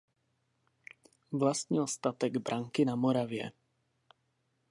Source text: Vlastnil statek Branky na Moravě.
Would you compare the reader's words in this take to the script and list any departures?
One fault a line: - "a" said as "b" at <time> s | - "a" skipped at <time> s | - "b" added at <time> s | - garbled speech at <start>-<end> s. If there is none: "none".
none